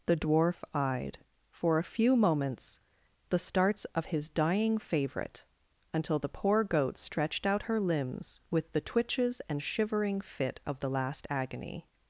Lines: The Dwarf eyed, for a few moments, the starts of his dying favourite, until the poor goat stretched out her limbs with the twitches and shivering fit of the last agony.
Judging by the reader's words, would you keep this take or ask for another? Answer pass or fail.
pass